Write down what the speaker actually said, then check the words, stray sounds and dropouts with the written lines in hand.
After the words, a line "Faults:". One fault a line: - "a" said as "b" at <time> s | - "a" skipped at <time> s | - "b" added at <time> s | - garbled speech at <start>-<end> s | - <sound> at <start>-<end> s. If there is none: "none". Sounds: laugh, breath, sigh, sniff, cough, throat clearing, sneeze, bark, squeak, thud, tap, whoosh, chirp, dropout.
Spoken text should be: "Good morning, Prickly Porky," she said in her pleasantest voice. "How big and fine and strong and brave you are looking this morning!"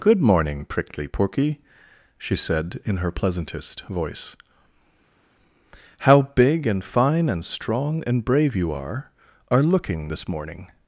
"Good morning, Prickly Porky," she said in her pleasantest voice. "How big and fine and strong and brave you are are looking this morning!"
Faults:
- "are" added at 9.5 s